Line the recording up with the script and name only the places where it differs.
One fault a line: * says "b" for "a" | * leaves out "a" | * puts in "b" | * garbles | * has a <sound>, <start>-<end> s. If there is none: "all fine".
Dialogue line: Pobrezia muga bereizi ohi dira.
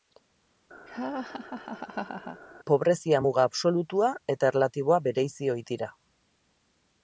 * has a laugh, 0.9-2.4 s
* puts in "absolutua eta erlatiboa"